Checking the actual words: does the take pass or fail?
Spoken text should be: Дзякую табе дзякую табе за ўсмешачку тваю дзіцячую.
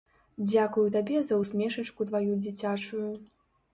fail